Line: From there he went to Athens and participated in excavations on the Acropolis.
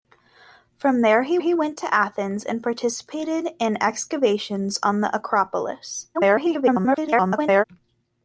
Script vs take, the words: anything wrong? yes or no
yes